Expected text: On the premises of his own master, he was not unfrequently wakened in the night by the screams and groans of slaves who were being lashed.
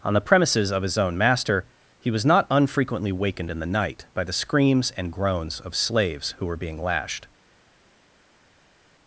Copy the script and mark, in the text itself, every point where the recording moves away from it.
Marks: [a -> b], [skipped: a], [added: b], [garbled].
On the premises of his own master, he was not unfrequently wakened in the night by the screams and groans of slaves who were being lashed.